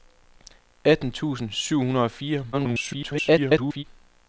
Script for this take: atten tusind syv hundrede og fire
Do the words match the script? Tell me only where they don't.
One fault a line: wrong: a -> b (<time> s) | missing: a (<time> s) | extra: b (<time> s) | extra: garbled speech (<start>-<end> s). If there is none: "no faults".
extra: garbled speech (2.5-3.8 s)